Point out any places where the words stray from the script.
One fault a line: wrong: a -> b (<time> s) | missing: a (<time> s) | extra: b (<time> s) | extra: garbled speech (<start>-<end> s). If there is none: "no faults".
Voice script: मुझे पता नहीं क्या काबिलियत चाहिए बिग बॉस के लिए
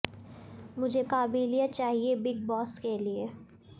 missing: पता नहीं क्या (1.0 s)